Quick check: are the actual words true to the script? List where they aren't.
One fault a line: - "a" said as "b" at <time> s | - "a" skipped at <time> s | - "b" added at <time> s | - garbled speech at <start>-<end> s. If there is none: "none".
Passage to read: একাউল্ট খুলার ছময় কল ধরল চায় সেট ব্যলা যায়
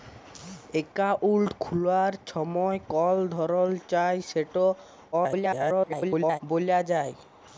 - garbled speech at 5.1-6.4 s